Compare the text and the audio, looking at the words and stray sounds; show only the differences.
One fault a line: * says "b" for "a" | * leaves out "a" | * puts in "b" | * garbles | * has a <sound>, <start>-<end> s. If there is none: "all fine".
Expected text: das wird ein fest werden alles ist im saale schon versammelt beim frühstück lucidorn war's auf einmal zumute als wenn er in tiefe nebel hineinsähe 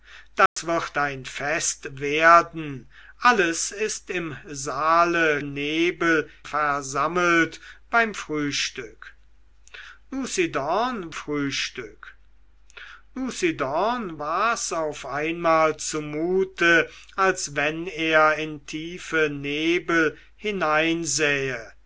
* has a dropout, 0.5-0.6 s
* says "nebel" for "schon"
* puts in "frühstück lucidorn"